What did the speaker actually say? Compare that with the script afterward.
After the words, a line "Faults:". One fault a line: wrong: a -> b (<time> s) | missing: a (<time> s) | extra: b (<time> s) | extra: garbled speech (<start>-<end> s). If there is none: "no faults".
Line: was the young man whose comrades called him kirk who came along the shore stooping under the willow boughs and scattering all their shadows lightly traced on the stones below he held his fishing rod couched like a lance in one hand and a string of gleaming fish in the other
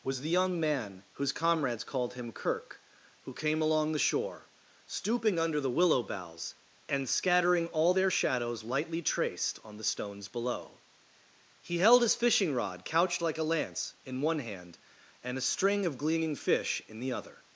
was the young man whose comrades called him kirk who came along the shore stooping under the willow boughs and scattering all their shadows lightly traced on the stones below he held his fishing rod couched like a lance in one hand and a string of gleaming fish in the other
Faults:
no faults